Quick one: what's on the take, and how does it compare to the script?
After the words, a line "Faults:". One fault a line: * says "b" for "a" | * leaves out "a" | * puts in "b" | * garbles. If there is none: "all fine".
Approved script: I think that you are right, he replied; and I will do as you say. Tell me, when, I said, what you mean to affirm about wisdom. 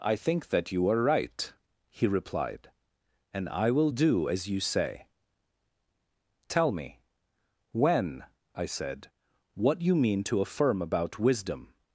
I think that you are right, he replied; and I will do as you say. Tell me, when, I said, what you mean to affirm about wisdom.
Faults:
all fine